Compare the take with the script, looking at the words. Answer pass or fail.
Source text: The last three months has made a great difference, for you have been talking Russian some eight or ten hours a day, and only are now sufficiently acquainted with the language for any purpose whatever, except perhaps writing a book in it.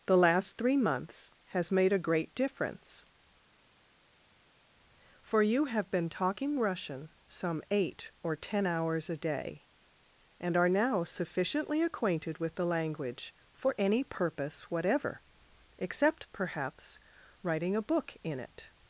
fail